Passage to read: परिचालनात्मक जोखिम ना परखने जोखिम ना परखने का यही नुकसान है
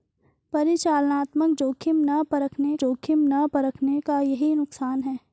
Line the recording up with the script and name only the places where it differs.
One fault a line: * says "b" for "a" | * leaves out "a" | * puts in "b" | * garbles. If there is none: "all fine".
all fine